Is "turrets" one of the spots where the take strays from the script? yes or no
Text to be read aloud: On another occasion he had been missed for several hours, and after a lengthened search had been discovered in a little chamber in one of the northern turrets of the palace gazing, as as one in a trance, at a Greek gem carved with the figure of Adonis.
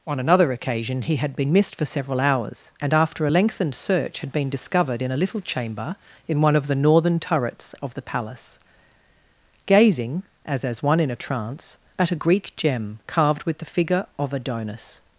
no